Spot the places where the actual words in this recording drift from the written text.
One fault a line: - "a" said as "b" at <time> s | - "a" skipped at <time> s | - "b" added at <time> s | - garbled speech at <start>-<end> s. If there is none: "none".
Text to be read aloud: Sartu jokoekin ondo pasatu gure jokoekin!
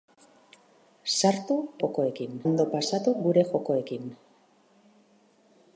none